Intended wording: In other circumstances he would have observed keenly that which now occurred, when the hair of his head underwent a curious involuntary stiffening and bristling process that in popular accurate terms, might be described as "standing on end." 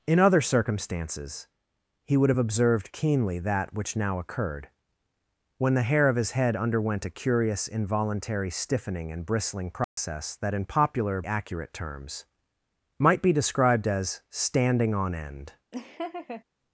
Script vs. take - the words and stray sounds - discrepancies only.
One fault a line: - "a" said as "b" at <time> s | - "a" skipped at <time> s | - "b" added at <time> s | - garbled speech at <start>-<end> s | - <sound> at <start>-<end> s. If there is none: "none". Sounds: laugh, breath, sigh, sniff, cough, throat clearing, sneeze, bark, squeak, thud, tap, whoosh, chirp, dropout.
- dropout at 9.8-10.0 s
- laugh at 15.7-16.4 s